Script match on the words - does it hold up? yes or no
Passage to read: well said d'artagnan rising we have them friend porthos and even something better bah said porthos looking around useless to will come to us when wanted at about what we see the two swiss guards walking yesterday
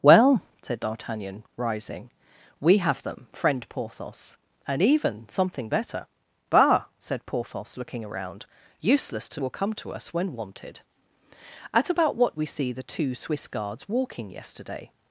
yes